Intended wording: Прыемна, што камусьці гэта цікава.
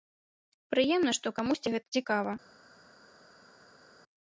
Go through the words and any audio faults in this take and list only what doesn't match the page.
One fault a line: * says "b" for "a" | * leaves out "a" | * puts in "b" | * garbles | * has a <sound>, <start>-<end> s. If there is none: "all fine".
all fine